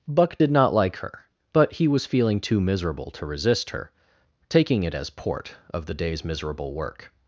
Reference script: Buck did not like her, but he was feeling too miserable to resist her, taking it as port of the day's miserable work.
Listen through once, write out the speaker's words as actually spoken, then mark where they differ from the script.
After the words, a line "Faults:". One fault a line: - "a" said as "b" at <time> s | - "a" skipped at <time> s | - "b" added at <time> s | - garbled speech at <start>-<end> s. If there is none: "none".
Buck did not like her, but he was feeling too miserable to resist her, taking it as port of the day's miserable work.
Faults:
none